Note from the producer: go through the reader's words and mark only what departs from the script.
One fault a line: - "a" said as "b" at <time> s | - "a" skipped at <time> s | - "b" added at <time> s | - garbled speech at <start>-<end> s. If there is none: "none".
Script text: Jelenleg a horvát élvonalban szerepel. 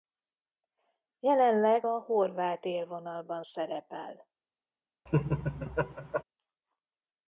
none